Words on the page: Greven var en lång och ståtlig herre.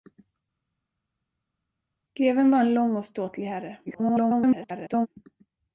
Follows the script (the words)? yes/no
no